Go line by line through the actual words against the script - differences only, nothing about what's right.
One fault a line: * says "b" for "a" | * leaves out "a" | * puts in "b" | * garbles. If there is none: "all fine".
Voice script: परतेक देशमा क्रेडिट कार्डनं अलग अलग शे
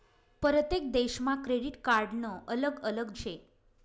all fine